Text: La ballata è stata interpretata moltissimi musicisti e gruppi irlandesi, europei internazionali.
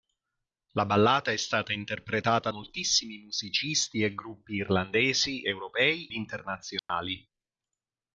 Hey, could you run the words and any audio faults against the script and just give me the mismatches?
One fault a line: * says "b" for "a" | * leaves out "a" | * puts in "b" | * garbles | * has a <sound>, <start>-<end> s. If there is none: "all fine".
* has a dropout, 6.8-6.9 s